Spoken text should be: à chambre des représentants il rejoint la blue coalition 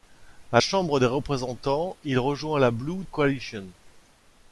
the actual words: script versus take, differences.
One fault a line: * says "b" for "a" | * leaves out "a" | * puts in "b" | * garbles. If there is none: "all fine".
all fine